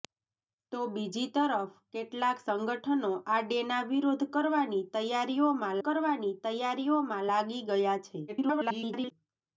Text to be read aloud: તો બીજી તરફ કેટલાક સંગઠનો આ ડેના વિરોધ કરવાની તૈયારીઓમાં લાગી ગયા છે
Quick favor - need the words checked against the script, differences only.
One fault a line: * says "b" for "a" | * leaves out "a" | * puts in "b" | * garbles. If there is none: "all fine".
* puts in "કરવાની તૈયારીઓમાં"
* garbles